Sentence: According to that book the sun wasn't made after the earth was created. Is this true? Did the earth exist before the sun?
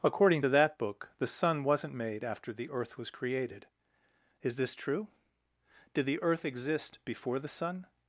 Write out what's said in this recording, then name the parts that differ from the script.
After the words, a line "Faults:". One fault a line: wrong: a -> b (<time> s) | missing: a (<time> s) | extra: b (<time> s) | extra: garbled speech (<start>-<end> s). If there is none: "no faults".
According to that book the sun wasn't made after the earth was created. Is this true? Did the earth exist before the sun?
Faults:
no faults